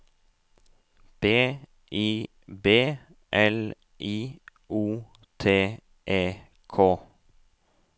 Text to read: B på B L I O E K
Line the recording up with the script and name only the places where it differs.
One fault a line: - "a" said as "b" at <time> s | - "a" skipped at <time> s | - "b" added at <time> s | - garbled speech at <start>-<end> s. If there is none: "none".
- "på" said as "I" at 1.9 s
- "T" added at 5.4 s